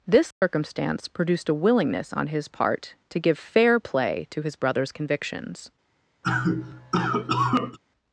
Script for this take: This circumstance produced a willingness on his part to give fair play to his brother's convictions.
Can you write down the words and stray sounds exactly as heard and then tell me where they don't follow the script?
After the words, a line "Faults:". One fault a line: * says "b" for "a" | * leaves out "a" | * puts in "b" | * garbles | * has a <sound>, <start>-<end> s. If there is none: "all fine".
This circumstance produced a willingness on his part to give fair play to his brother's convictions.
Faults:
* has a dropout, 0.3-0.4 s
* has a cough, 6.2-7.8 s